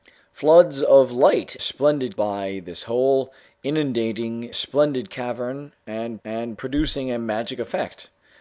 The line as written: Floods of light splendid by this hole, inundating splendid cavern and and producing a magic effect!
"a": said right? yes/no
yes